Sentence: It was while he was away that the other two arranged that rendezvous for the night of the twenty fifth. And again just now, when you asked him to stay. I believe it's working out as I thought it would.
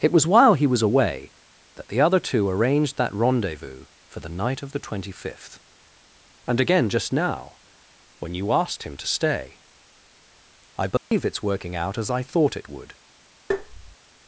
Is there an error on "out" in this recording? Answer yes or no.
no